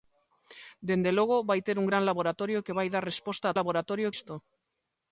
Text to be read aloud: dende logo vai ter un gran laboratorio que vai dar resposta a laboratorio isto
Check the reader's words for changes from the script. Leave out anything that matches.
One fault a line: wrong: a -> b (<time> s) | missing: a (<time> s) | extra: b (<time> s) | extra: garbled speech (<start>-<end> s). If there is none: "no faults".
no faults